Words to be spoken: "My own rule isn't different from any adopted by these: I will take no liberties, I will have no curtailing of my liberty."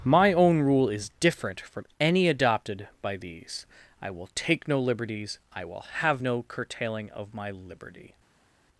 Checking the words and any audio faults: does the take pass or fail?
fail